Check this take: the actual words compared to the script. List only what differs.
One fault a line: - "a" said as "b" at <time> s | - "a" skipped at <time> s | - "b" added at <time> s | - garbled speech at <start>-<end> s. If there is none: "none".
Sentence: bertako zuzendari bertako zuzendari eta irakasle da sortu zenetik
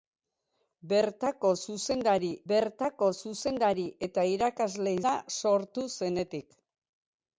none